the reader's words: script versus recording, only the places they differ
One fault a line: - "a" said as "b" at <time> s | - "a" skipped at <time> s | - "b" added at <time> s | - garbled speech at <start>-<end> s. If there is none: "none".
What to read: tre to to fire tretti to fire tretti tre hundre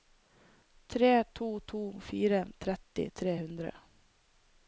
- "to fire tretti" skipped at 3.1 s